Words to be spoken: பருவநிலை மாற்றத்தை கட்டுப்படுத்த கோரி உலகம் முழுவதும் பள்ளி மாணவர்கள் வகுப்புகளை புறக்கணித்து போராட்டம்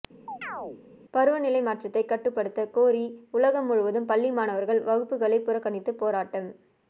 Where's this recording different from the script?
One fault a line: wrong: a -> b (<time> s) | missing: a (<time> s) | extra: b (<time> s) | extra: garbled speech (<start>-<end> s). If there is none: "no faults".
no faults